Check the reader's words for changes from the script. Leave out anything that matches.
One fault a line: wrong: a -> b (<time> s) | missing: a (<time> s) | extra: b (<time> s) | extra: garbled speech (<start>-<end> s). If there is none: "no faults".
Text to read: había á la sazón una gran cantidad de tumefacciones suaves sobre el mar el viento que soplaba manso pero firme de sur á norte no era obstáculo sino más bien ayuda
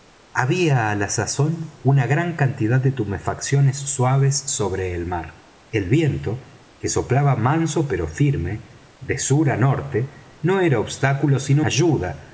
missing: más bien (11.6 s)